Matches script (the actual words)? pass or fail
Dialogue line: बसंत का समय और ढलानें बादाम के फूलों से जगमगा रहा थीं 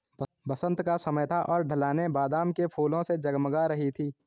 fail